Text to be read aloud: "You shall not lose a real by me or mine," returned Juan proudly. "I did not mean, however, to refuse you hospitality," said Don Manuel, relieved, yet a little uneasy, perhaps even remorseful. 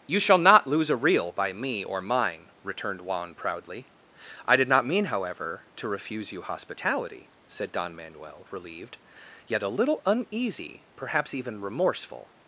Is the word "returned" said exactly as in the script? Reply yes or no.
yes